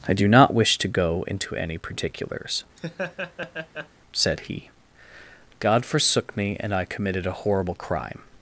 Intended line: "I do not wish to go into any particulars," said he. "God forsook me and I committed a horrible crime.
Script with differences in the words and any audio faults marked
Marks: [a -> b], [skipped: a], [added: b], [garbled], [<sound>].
"I do not wish to go into any particulars," [laugh] said he. "God forsook me and I committed a horrible crime.